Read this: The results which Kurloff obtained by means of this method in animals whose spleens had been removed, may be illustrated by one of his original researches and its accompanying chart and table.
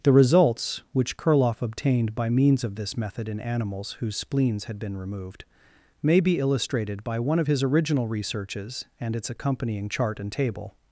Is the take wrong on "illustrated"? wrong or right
right